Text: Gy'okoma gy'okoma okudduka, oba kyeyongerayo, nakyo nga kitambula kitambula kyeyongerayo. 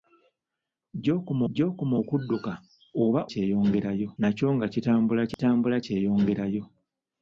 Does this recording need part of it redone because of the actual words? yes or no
no